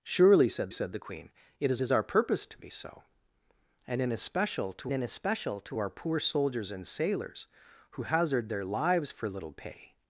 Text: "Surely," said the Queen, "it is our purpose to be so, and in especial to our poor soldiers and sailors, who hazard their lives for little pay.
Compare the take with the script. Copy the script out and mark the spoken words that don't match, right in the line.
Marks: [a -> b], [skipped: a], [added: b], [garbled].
"Surely," said [added: said] the Queen, "it is [added: is] our purpose to be so, and in especial to [added: in especial to] our poor soldiers and sailors, who hazard their lives for little pay.